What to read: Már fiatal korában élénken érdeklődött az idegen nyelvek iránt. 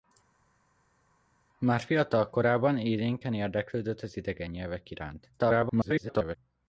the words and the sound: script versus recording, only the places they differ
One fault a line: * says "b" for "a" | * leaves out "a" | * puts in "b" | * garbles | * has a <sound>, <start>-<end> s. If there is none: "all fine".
* garbles